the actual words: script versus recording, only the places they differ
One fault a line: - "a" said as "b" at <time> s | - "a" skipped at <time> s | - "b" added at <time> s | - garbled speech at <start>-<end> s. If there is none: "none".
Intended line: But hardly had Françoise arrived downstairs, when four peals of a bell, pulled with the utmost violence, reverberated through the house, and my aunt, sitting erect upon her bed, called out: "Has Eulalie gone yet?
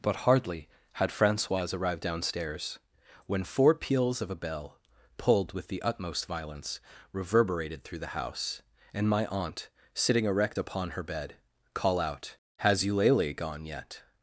- "called" said as "call" at 11.7 s